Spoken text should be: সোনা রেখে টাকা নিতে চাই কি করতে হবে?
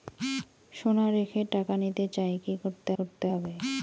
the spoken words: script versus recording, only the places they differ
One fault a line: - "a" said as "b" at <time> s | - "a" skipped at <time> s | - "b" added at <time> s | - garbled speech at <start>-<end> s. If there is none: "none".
- "করতে" added at 3.0 s